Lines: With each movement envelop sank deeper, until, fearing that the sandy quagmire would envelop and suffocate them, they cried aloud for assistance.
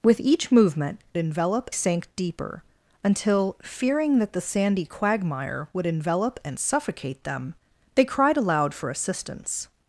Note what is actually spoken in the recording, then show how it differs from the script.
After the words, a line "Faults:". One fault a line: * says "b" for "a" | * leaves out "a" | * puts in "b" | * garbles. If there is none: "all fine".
With each movement envelop sank deeper, until, fearing that the sandy quagmire would envelop and suffocate them, they cried aloud for assistance.
Faults:
all fine